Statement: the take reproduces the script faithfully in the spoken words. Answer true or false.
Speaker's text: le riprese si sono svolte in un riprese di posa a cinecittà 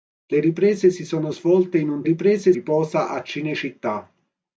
true